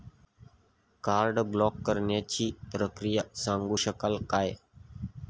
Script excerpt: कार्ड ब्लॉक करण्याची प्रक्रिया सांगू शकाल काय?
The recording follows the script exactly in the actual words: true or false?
true